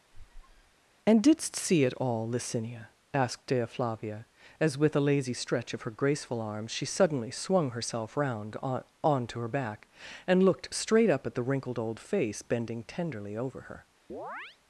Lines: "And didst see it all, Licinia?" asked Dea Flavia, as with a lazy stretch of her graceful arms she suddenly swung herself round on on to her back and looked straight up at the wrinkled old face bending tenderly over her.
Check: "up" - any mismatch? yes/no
no